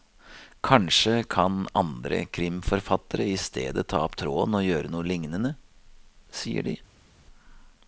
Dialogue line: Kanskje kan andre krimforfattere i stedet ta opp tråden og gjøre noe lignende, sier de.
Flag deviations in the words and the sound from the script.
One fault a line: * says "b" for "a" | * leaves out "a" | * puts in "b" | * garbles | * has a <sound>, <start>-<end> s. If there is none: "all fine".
all fine